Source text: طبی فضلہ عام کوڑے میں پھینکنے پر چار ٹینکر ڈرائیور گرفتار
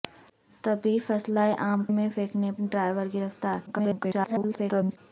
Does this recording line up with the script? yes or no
no